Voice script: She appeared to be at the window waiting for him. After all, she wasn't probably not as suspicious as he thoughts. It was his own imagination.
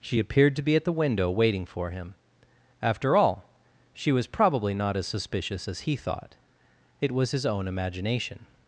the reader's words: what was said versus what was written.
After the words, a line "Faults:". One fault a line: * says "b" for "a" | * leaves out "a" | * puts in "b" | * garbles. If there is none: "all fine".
She appeared to be at the window waiting for him. After all, she was probably not as suspicious as he thought. It was his own imagination.
Faults:
* says "was" for "wasn't"
* says "thought" for "thoughts"